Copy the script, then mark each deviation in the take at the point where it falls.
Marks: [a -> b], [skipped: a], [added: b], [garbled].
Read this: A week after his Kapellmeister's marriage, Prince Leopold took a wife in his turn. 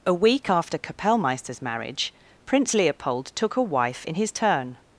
A week after [skipped: his] Kapellmeister's marriage, Prince Leopold took a wife in his turn.